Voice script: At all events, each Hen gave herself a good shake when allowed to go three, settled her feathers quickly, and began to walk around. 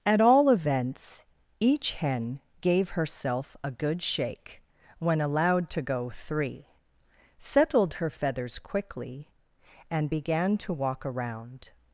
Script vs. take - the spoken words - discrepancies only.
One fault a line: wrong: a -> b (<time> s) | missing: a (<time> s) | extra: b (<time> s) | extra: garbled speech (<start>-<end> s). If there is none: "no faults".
no faults